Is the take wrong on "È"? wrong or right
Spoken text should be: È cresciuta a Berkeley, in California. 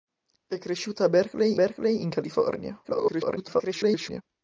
right